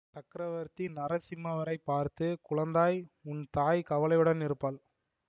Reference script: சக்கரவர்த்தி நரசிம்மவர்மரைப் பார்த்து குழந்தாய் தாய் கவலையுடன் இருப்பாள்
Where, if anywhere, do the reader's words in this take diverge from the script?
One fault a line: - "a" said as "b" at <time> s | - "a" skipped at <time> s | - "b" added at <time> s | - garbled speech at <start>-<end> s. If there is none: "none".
- "உன்" added at 3.2 s